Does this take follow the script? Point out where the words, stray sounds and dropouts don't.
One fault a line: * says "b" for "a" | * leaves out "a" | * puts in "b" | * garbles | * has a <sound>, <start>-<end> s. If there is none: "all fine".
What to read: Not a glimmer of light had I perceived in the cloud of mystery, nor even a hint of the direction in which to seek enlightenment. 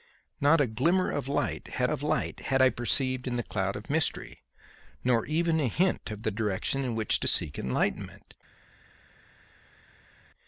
* puts in "of light had"